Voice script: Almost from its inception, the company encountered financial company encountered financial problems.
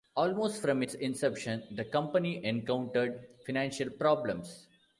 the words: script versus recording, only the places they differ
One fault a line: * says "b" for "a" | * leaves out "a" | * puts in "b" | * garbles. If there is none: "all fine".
* leaves out "company encountered financial"